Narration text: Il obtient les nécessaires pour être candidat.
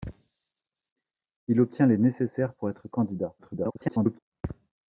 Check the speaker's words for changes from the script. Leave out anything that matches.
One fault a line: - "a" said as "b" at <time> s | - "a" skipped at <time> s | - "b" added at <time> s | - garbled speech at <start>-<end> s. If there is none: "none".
- garbled speech at 3.4-4.2 s